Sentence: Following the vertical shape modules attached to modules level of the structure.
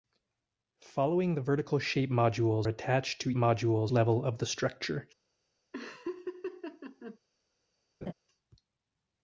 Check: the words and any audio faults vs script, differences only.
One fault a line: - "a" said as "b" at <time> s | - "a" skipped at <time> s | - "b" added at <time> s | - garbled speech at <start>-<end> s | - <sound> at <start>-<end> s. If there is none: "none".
- laugh at 5.7-7.2 s
- laugh at 8.0-8.1 s